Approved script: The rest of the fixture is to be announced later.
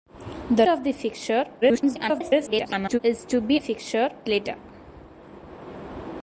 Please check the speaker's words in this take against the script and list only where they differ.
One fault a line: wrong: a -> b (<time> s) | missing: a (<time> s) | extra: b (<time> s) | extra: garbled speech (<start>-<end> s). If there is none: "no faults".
missing: rest (0.7 s)
extra: garbled speech (1.6-3.0 s)
wrong: announced -> fixture (3.6 s)